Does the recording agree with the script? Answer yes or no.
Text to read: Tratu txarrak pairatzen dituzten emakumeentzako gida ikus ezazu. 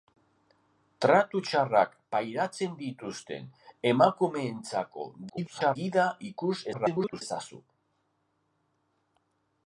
no